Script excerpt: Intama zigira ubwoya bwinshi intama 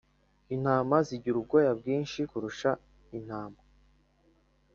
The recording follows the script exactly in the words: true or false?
false